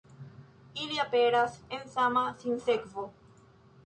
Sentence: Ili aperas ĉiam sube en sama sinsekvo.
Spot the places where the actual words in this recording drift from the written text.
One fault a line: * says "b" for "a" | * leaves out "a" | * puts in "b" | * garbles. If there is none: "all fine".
* leaves out "ĉiam sube"